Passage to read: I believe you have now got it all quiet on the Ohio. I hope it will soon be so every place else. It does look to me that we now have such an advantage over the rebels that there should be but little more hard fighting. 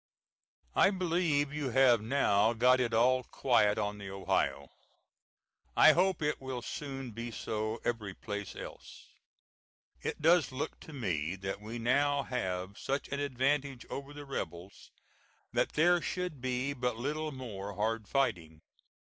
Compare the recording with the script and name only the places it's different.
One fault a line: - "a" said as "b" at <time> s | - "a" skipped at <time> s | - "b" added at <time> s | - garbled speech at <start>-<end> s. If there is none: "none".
none